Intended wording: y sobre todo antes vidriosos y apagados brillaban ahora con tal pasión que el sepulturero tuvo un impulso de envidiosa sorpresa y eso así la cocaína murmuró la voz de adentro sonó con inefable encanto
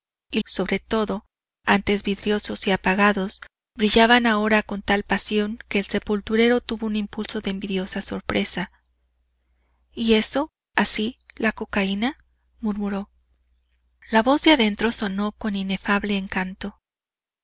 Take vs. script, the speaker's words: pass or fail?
pass